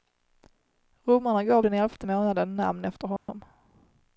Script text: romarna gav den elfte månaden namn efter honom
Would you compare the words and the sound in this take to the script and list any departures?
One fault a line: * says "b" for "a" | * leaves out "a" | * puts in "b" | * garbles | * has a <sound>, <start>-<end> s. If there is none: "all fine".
* has a dropout, 3.2-3.3 s